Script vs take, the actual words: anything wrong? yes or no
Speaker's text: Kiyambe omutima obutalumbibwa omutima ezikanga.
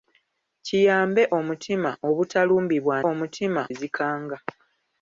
no